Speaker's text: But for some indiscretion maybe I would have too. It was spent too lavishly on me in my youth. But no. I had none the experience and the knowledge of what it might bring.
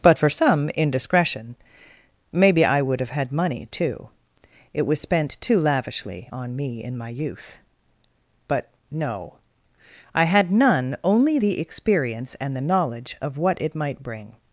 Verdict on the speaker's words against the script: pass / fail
fail